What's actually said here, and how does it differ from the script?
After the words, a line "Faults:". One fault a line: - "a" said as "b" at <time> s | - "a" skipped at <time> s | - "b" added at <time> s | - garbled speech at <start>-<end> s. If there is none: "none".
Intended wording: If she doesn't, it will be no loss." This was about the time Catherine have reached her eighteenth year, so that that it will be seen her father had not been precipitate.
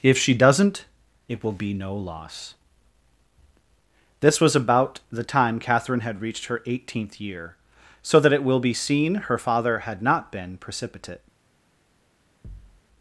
If she doesn't, it will be no loss." This was about the time Catherine had reached her eighteenth year, so that it will be seen her father had not been precipitate.
Faults:
- "have" said as "had" at 6.0 s
- "that" skipped at 8.3 s